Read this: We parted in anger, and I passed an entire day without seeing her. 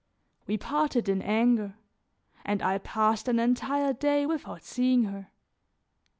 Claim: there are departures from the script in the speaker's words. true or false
false